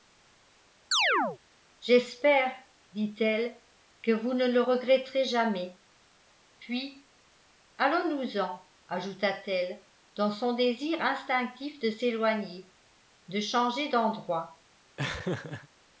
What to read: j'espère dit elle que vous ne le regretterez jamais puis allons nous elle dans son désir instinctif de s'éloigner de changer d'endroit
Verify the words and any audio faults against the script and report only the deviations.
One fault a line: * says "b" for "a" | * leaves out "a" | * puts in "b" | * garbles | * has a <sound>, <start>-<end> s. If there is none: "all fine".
* has a chirp, 0.9-1.4 s
* puts in "en ajouta t"
* has a laugh, 15.0-15.7 s